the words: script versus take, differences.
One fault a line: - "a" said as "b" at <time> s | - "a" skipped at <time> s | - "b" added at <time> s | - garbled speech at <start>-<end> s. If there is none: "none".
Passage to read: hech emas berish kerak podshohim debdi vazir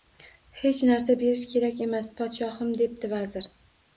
- "emas" said as "narsa" at 0.9 s
- "emas" added at 1.9 s